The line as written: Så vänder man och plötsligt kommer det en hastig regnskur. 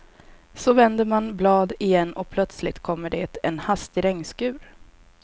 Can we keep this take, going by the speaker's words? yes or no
no